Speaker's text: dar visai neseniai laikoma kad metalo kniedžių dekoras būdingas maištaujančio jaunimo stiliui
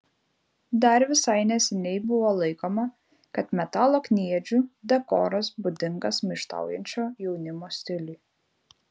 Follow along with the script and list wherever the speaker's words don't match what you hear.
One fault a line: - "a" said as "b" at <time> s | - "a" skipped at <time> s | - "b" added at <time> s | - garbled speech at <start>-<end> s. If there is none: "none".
- "buvo" added at 2.1 s